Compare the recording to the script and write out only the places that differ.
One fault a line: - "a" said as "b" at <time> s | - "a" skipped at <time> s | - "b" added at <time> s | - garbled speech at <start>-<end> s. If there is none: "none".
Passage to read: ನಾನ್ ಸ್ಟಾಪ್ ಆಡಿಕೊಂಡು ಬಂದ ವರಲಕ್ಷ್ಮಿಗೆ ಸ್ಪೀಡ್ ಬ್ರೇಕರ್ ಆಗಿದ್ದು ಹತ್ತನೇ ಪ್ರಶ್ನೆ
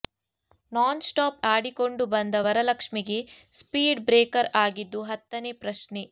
none